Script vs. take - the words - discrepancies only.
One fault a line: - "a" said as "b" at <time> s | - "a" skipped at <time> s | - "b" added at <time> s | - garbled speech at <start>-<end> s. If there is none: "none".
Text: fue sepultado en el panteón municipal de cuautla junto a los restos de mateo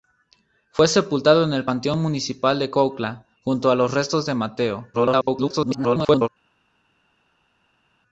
- garbled speech at 4.9-6.3 s